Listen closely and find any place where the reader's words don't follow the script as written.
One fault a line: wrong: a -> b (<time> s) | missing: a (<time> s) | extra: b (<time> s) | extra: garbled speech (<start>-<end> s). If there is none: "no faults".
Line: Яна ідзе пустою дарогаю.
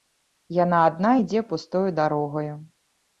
extra: адна (0.9 s)